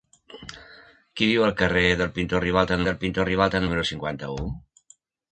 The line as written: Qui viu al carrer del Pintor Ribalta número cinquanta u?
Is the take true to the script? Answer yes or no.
no